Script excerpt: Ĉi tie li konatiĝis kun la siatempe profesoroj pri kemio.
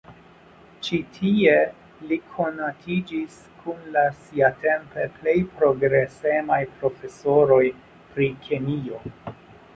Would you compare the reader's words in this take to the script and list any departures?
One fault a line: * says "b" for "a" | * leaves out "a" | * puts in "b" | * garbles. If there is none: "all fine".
* puts in "plej progresemaj"